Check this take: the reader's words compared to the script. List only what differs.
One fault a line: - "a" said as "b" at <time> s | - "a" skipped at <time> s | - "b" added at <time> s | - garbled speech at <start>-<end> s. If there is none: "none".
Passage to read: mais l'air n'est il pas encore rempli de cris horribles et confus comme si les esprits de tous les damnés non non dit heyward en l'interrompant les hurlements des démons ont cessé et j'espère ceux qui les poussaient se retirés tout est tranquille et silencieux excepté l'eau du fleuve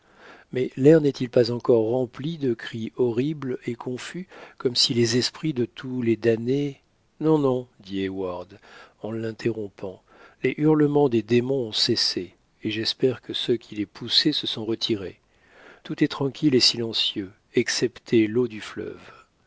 - "que" added at 13.2 s
- "sont" added at 14.5 s